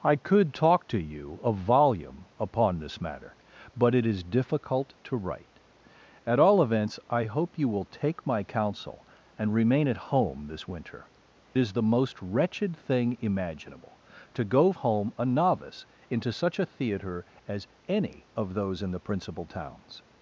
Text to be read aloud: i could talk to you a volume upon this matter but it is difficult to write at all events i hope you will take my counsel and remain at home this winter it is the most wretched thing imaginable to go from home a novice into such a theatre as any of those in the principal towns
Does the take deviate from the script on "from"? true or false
true